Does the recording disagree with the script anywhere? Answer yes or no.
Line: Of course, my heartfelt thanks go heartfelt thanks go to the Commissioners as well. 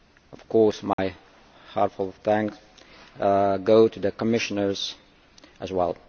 yes